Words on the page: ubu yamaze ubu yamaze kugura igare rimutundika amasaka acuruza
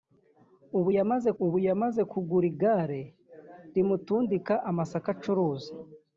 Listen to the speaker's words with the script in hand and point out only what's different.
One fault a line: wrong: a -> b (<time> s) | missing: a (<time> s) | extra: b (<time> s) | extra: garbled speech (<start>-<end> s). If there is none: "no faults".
no faults